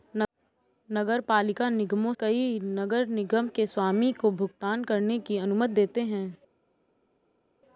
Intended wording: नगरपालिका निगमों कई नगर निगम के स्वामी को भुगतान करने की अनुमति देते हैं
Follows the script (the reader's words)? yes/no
yes